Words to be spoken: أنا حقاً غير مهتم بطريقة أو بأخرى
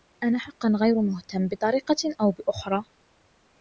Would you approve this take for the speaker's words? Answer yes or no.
yes